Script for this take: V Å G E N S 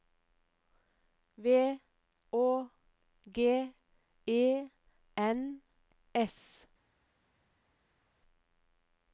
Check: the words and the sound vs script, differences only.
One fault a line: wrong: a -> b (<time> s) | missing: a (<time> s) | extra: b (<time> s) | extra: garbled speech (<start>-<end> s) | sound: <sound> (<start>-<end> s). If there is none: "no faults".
no faults